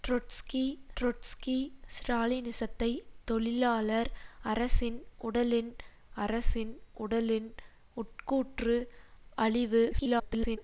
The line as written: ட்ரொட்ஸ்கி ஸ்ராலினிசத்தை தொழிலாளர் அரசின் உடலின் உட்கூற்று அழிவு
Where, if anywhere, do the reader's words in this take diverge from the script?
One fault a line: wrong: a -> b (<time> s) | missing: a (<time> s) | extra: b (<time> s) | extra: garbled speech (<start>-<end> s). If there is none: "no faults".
extra: ட்ரொட்ஸ்கி (1.0 s)
extra: அரசின் உடலின் (6.2 s)
extra: garbled speech (9.9-10.6 s)